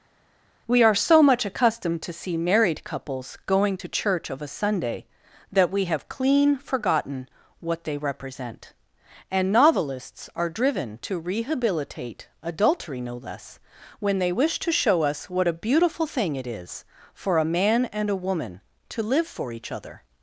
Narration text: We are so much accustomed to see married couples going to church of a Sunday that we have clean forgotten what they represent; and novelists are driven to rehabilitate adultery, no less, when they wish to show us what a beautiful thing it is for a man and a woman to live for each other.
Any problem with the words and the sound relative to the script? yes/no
no